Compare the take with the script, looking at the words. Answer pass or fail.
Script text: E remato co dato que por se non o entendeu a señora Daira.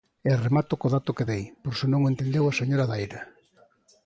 fail